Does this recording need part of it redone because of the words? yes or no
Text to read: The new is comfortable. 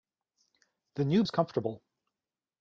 no